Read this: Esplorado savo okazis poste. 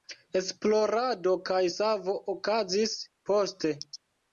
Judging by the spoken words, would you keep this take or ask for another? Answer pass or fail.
fail